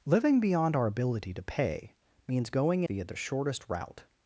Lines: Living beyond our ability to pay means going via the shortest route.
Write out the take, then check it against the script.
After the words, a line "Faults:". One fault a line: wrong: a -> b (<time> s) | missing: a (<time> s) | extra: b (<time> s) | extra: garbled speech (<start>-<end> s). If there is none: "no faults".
Living beyond our ability to pay means going via the shortest route.
Faults:
no faults